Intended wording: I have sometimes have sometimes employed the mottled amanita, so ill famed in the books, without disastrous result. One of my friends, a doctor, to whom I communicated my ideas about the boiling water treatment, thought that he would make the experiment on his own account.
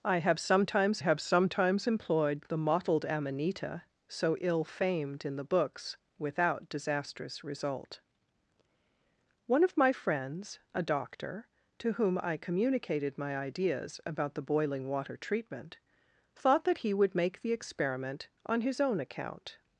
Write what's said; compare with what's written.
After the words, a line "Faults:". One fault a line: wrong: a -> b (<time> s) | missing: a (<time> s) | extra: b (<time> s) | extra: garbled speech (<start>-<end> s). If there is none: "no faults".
I have sometimes have sometimes employed the mottled amanita, so ill famed in the books, without disastrous result. One of my friends, a doctor, to whom I communicated my ideas about the boiling water treatment, thought that he would make the experiment on his own account.
Faults:
no faults